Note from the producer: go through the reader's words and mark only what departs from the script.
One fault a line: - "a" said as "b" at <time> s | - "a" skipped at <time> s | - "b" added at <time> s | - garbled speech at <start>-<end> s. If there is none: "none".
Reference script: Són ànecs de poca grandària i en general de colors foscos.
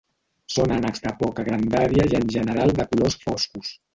none